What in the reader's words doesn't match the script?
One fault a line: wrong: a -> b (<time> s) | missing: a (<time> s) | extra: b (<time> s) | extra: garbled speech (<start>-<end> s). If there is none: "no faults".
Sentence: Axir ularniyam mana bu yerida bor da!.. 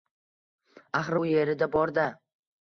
missing: ularniyam mana (1.2 s)